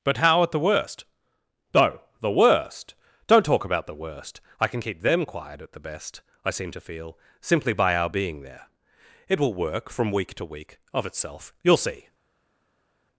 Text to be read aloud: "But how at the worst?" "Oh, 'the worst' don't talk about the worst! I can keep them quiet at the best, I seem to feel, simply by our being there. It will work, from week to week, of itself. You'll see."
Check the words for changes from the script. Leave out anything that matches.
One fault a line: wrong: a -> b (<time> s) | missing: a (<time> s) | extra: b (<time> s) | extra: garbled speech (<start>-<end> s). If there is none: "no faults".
no faults